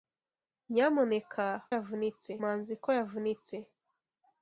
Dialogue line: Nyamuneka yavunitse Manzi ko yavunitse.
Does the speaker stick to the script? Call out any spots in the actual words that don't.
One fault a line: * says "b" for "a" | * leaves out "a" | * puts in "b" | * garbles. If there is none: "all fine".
all fine